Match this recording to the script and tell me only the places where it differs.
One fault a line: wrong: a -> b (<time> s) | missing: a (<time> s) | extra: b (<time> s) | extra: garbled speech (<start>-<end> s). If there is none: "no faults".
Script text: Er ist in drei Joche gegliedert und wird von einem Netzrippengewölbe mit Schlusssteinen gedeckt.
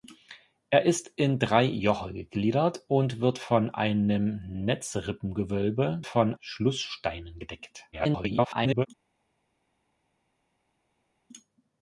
wrong: mit -> von (6.0 s)
extra: garbled speech (7.9-8.9 s)